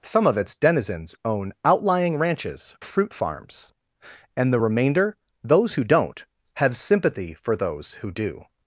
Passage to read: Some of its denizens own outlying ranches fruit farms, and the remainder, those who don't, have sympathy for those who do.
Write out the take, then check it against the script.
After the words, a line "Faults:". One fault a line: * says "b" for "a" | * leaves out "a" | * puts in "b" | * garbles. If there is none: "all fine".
Some of its denizens own outlying ranches fruit farms, and the remainder, those who don't, have sympathy for those who do.
Faults:
all fine